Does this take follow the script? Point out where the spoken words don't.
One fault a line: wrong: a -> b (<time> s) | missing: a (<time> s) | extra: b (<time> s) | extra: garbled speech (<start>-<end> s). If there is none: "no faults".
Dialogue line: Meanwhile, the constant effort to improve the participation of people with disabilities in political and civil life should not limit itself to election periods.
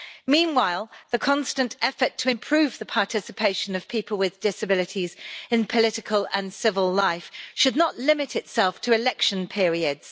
no faults